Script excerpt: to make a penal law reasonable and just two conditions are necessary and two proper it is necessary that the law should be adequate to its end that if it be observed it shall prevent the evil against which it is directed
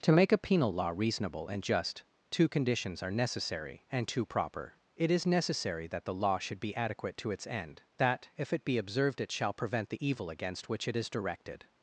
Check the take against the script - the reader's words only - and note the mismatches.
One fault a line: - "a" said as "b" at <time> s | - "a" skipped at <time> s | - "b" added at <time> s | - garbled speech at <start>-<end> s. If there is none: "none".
none